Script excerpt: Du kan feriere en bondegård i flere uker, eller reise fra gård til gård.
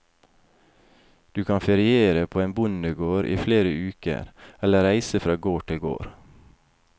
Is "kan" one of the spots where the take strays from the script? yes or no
no